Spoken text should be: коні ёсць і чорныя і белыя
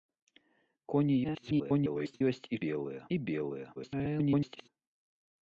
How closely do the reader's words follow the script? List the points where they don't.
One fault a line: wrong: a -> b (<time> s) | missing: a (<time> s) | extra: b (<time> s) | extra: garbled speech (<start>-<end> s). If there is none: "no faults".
extra: garbled speech (1.2-2.2 s)
wrong: чорныя -> белыя (2.7 s)
extra: garbled speech (3.8-4.7 s)